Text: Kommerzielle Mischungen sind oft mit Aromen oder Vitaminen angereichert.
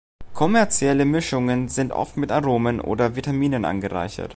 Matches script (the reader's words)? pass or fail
pass